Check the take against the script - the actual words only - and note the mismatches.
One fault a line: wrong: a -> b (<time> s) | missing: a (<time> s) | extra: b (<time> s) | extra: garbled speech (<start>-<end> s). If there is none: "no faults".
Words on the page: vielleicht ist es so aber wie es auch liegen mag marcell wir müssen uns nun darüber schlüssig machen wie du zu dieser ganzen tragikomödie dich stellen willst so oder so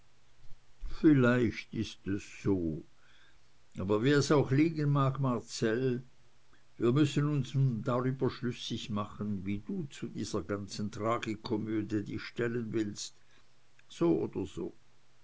no faults